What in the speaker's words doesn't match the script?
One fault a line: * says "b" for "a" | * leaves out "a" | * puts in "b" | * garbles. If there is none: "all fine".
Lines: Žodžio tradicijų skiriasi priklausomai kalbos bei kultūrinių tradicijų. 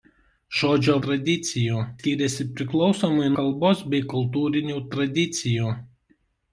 all fine